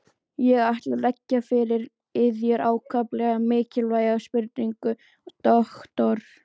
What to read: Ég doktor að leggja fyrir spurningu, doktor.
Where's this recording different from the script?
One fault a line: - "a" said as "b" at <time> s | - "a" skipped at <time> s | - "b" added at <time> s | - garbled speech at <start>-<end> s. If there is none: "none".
- "doktor" said as "ætla" at 0.7 s
- "yður ákaflega mikilvæga" added at 2.2 s